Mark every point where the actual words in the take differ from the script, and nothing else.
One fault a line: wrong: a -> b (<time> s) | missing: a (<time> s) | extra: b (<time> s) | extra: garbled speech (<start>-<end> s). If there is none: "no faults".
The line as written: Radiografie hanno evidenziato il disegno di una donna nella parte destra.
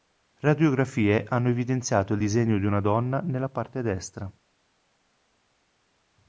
no faults